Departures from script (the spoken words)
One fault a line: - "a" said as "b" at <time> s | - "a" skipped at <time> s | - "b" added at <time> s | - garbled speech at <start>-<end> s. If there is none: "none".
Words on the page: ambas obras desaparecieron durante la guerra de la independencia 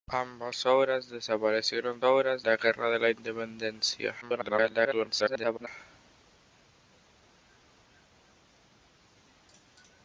- "durante" said as "obras" at 2.0 s
- garbled speech at 4.2-5.7 s